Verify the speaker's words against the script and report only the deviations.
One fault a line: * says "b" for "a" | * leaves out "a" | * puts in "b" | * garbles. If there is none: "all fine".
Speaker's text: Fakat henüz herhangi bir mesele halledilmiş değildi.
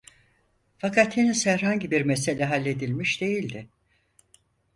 all fine